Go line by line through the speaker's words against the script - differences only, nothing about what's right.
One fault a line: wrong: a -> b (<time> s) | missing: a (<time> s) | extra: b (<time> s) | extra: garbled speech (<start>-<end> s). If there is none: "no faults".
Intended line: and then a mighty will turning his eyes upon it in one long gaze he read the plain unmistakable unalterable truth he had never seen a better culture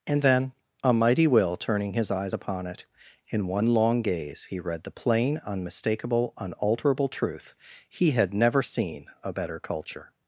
no faults